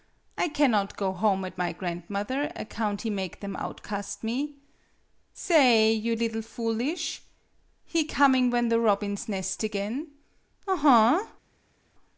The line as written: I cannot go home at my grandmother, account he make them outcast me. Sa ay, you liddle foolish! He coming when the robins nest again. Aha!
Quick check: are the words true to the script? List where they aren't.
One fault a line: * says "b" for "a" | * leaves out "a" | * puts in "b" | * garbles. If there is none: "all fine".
all fine